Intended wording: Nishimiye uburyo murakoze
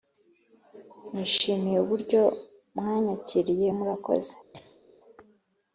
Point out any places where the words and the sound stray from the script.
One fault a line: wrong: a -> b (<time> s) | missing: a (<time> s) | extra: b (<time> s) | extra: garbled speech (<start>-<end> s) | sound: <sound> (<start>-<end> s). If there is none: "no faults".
extra: mwanyakiriye (2.8 s)
sound: cough (4.5-4.8 s)